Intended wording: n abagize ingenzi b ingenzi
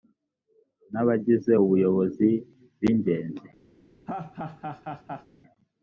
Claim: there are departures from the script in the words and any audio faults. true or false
true